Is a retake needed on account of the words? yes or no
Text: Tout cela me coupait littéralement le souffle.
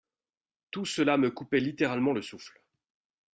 no